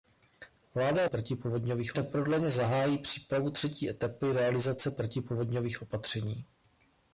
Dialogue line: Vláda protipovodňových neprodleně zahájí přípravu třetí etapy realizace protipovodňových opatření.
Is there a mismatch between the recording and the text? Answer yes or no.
no